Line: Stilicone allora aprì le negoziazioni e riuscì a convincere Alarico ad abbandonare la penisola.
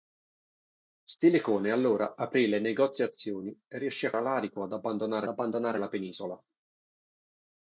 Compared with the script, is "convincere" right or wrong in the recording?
wrong